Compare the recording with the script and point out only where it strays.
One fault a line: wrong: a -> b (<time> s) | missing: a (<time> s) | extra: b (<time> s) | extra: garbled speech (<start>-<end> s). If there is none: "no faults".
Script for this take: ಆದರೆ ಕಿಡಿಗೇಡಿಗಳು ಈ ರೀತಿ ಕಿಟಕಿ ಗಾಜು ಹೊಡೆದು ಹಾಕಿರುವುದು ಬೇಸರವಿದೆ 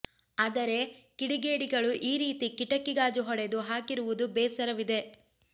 no faults